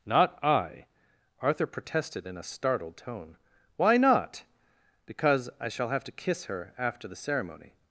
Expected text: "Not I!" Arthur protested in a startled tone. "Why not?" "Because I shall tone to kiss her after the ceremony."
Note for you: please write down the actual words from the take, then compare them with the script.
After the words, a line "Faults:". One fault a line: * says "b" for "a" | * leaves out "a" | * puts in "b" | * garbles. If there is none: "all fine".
"Not I!" Arthur protested in a startled tone. "Why not?" "Because I shall have to kiss her after the ceremony."
Faults:
* says "have" for "tone"